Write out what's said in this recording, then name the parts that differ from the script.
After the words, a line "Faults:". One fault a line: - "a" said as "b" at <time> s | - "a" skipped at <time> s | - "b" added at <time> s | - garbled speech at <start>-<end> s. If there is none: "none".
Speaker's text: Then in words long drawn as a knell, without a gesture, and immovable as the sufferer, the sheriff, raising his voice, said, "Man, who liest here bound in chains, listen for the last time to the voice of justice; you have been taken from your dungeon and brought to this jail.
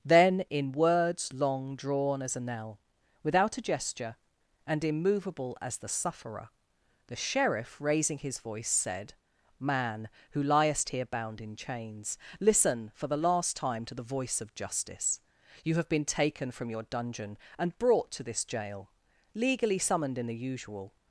Then in words long drawn as a knell, without a gesture, and immovable as the sufferer, the sheriff, raising his voice, said, "Man, who liest here bound in chains, listen for the last time to the voice of justice; you have been taken from your dungeon and brought to this jail. Legally summoned in the usual
Faults:
- "Legally summoned in the usual" added at 19.4 s